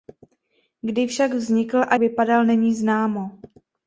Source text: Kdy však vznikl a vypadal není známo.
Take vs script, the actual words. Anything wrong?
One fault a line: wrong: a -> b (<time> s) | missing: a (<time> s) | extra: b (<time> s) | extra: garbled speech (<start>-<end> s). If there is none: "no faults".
no faults